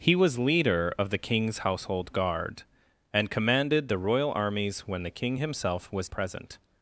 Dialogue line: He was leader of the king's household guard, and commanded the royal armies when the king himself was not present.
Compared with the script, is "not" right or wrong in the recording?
wrong